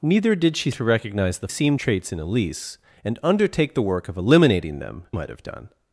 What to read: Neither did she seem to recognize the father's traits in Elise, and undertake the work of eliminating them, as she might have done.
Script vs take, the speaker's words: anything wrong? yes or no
yes